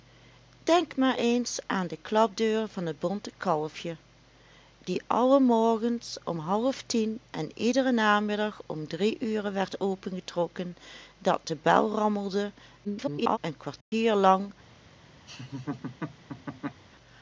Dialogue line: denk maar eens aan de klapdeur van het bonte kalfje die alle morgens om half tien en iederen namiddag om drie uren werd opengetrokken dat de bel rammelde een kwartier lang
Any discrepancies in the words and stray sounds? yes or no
yes